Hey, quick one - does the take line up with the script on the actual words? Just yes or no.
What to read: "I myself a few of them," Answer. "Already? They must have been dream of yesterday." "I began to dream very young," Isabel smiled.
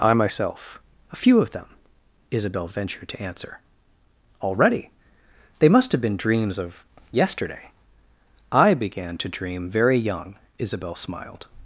no